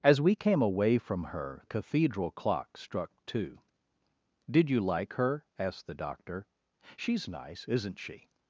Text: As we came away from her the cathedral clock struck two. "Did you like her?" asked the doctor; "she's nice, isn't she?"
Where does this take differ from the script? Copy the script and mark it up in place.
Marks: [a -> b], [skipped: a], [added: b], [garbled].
As we came away from her [skipped: the] cathedral clock struck two. "Did you like her?" asked the doctor; "she's nice, isn't she?"